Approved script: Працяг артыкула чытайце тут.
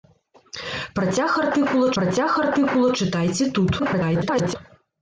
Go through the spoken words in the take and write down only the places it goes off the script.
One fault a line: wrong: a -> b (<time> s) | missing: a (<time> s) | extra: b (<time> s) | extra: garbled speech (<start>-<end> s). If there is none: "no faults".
extra: працяг артыкула (2.0 s)
extra: garbled speech (3.8-4.6 s)